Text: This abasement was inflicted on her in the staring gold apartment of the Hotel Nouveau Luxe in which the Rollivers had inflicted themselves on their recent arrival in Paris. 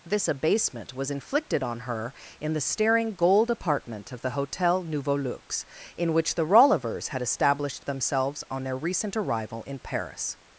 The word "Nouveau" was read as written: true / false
true